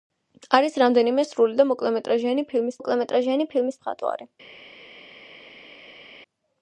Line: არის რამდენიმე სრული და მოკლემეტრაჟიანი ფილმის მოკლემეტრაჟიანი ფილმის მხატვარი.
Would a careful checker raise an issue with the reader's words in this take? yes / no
no